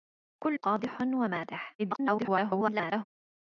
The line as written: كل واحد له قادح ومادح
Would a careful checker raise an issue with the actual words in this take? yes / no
yes